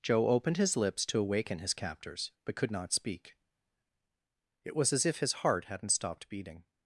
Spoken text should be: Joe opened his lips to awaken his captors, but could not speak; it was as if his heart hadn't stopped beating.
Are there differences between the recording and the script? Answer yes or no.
no